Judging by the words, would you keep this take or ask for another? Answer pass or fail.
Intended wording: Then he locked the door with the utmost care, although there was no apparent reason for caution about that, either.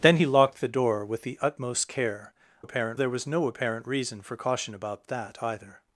fail